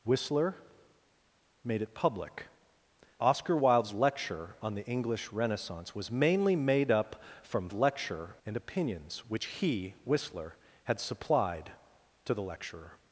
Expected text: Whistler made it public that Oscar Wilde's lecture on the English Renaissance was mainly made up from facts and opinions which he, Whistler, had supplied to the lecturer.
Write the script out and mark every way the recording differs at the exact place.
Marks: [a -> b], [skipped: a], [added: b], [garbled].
Whistler made it public [skipped: that] Oscar Wilde's lecture on the English Renaissance was mainly made up from [facts -> lecture] and opinions which he, Whistler, had supplied to the lecturer.